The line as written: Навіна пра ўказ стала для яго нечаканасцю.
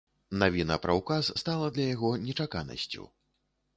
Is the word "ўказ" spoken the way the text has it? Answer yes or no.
yes